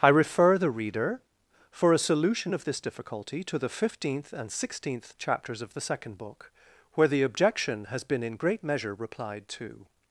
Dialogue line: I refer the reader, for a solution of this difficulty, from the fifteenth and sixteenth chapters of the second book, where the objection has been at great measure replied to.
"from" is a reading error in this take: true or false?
true